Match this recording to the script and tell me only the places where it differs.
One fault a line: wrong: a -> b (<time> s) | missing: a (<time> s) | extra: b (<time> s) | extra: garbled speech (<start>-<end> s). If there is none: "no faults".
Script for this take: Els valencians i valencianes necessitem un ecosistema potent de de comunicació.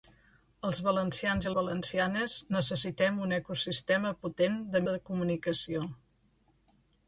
no faults